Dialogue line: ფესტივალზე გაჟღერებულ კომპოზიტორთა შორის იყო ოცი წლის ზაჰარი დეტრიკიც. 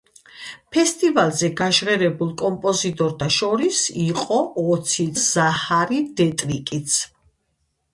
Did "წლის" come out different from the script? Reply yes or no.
yes